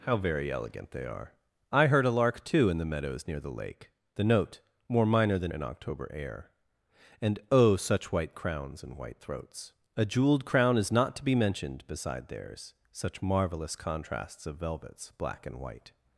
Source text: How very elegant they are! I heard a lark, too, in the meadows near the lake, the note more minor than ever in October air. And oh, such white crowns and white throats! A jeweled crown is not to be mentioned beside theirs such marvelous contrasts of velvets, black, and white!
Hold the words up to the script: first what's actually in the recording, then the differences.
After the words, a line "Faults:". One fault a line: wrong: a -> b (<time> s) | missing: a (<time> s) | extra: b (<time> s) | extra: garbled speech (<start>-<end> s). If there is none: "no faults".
How very elegant they are! I heard a lark, too, in the meadows near the lake, the note more minor than in October air. And oh, such white crowns and white throats! A jeweled crown is not to be mentioned beside theirs such marvelous contrasts of velvets, black, and white!
Faults:
missing: ever (5.5 s)